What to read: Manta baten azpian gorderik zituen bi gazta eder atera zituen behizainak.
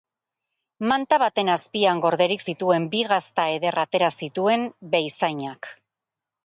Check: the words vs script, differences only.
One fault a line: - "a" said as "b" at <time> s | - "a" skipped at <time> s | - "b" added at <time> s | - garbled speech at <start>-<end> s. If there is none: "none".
none